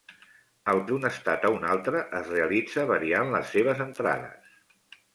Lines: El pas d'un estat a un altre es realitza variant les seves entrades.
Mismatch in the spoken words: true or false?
true